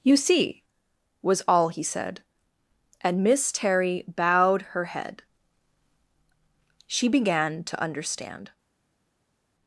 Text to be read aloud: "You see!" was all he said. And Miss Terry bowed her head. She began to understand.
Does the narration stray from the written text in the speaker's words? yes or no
no